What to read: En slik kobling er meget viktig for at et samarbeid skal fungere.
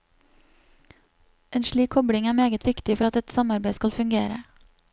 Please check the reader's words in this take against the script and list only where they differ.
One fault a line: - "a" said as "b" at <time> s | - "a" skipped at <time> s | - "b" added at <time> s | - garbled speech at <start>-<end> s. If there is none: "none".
none